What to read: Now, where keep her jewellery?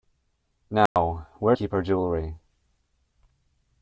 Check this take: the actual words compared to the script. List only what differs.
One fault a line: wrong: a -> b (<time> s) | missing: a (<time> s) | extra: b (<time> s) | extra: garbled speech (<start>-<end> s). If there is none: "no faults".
no faults